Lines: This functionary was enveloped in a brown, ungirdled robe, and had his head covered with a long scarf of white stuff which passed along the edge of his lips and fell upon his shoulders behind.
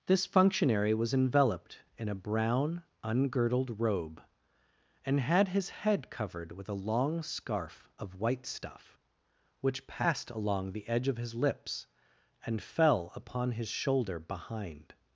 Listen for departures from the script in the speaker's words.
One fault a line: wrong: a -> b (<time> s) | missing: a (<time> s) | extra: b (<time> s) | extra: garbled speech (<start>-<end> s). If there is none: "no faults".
wrong: shoulders -> shoulder (13.7 s)